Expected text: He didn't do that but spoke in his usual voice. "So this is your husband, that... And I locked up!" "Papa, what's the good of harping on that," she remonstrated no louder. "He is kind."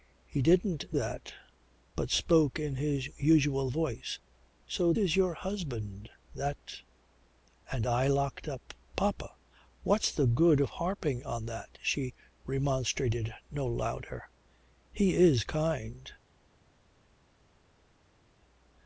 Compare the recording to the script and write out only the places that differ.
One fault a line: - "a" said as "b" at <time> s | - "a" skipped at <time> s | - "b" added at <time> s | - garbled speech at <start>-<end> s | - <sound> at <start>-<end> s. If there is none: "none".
- "do" skipped at 1.0 s
- "this" skipped at 4.9 s